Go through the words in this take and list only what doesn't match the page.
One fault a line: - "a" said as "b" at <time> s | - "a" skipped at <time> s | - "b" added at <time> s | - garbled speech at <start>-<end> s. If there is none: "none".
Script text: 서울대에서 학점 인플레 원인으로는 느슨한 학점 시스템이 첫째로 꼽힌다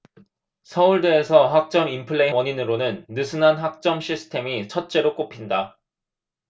none